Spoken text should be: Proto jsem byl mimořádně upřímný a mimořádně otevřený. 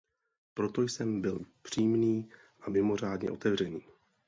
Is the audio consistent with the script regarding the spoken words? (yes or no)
no